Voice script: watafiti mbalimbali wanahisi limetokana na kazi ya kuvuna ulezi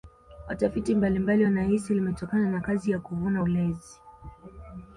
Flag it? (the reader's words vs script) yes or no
no